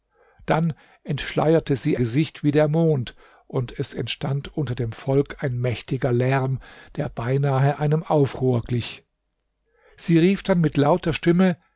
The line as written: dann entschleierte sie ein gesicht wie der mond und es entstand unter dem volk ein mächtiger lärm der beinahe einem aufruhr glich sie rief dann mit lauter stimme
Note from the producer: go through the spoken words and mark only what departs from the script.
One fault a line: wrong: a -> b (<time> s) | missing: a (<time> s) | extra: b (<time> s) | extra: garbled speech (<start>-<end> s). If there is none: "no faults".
missing: ein (2.0 s)